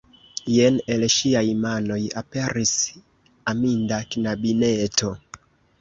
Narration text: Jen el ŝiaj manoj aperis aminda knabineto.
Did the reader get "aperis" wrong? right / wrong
right